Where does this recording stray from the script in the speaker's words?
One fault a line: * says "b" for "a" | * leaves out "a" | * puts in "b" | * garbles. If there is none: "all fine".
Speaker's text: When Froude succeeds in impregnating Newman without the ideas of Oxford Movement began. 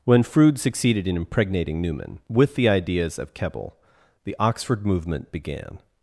* says "succeeded" for "succeeds"
* says "with" for "without"
* puts in "Keble the"